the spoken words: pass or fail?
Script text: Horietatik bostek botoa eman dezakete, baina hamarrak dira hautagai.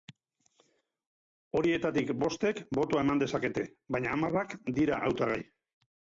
pass